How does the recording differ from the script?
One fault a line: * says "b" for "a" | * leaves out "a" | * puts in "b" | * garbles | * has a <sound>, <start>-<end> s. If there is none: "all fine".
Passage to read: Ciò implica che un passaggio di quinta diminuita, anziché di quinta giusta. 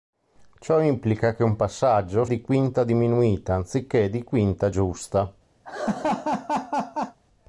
* has a laugh, 5.6-7.2 s